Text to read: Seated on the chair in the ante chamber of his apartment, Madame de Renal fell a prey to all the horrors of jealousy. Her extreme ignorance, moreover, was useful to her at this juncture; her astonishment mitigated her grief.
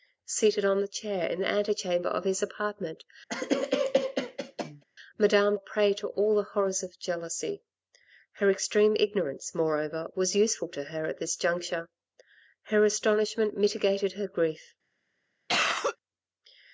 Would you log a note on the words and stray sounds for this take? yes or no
yes